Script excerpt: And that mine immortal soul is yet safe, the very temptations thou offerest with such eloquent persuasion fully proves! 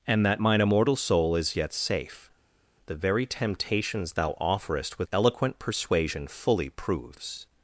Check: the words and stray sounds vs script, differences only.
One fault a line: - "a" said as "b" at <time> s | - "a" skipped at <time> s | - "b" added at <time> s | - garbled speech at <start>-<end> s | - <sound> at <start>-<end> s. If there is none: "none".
- "such" skipped at 5.1 s